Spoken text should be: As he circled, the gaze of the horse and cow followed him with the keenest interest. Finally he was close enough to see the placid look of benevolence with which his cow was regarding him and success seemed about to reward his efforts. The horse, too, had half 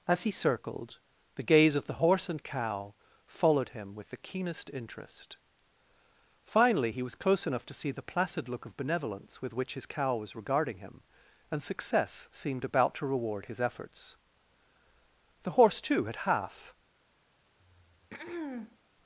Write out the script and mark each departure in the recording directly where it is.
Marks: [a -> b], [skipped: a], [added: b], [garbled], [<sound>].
As he circled, the gaze of the horse and cow followed him with the keenest interest. Finally he was close enough to see the placid look of benevolence with which his cow was regarding him and success seemed about to reward his efforts. The horse, too, had half [throat clearing]